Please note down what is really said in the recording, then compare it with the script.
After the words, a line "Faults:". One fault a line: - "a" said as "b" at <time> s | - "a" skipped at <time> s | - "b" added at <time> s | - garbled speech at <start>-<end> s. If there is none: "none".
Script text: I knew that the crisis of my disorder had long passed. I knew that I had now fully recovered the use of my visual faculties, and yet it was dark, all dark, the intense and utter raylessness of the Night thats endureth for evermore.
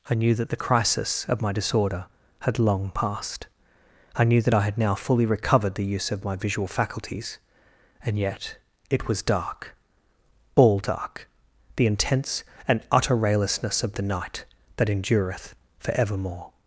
I knew that the crisis of my disorder had long passed. I knew that I had now fully recovered the use of my visual faculties, and yet it was dark, all dark, the intense and utter raylessness of the Night that endureth for evermore.
Faults:
- "thats" said as "that" at 14.8 s